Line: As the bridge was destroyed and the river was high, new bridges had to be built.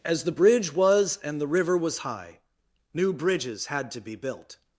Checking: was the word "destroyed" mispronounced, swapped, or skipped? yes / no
yes